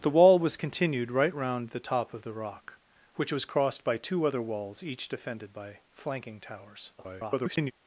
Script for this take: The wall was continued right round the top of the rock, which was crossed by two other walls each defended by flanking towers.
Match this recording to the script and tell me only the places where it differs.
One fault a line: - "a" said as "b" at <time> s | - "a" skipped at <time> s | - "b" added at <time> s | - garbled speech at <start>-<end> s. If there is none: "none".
- garbled speech at 7.0-7.7 s